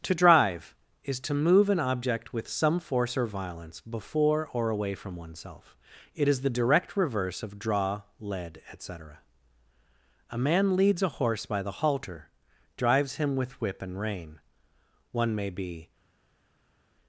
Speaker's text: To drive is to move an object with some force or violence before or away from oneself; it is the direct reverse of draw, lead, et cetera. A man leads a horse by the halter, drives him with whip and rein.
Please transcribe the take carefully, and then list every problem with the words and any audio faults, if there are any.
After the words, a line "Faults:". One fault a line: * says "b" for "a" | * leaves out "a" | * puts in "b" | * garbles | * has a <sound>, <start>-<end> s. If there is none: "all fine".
To drive is to move an object with some force or violence before or away from oneself; it is the direct reverse of draw, lead, et cetera. A man leads a horse by the halter, drives him with whip and rein. One may be
Faults:
* puts in "One may be"